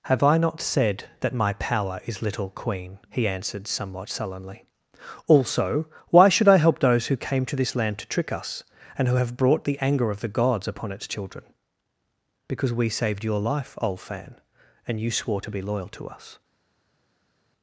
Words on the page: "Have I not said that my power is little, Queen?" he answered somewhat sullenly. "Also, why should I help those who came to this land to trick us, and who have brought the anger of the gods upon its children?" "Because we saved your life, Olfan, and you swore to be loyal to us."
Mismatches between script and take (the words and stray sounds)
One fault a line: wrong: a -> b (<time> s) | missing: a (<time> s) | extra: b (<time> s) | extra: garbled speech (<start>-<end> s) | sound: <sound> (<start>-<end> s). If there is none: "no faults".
no faults